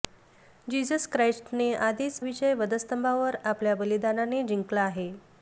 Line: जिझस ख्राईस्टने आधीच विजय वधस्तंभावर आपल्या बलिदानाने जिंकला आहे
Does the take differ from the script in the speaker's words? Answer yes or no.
no